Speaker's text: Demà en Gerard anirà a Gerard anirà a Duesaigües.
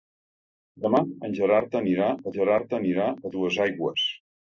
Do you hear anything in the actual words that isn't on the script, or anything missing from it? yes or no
no